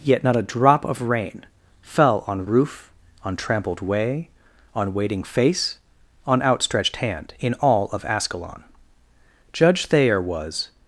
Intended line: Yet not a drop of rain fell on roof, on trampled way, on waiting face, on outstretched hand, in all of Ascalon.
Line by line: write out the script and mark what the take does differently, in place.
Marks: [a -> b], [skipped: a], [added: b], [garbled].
Yet not a drop of rain fell on roof, on trampled way, on waiting face, on outstretched hand, in all of Ascalon. [added: Judge Thayer was]